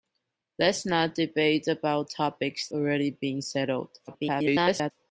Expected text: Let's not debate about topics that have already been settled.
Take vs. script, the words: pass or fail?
fail